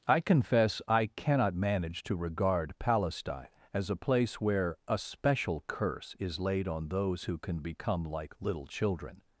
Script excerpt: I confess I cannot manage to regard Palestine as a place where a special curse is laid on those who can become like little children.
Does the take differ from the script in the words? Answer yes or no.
no